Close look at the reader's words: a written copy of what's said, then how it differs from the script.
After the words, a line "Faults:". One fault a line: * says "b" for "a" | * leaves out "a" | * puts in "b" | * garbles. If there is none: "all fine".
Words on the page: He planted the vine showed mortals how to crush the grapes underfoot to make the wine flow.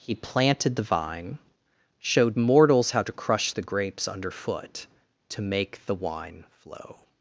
He planted the vine showed mortals how to crush the grapes underfoot to make the wine flow.
Faults:
all fine